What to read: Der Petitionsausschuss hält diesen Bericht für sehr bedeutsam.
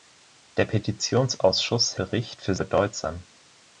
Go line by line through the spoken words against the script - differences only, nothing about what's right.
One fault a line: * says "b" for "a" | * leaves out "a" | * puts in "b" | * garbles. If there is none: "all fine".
* leaves out "hält diesen"
* leaves out "sehr"